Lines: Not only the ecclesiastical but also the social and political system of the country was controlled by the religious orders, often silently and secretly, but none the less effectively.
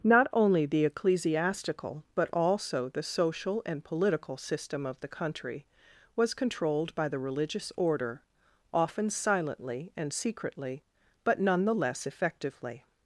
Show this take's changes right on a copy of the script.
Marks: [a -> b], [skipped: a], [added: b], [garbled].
Not only the ecclesiastical but also the social and political system of the country was controlled by the religious [orders, -> order] often silently and secretly, but none the less effectively.